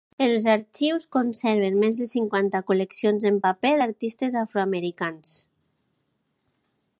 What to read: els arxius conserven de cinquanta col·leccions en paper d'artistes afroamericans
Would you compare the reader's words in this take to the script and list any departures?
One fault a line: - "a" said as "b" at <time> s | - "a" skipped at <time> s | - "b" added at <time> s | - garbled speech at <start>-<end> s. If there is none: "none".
- "més" added at 1.8 s